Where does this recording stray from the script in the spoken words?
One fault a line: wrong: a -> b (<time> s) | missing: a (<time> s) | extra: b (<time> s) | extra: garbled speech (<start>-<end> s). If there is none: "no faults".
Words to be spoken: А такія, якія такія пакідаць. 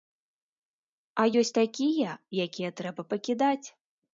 extra: ёсць (1.4 s)
wrong: такія -> трэба (2.8 s)